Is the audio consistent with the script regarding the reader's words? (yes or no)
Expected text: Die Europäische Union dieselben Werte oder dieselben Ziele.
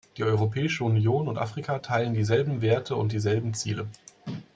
no